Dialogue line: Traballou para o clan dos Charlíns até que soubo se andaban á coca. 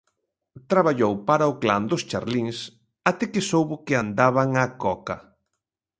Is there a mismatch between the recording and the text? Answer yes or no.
yes